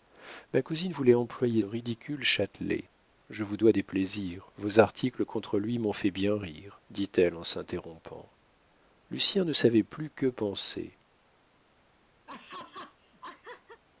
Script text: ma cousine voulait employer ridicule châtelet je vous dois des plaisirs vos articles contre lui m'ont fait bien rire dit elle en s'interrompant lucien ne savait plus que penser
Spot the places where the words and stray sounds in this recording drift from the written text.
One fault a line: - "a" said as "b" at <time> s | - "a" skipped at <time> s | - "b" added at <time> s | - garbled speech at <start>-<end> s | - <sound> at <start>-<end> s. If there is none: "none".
- laugh at 12.3-13.8 s